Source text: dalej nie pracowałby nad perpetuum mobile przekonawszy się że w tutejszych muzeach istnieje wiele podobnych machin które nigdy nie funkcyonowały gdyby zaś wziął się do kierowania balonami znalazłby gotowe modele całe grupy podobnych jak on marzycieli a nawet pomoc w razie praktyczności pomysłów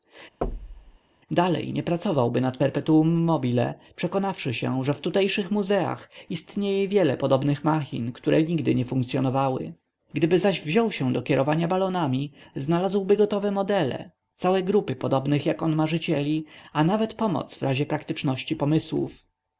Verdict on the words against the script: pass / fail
pass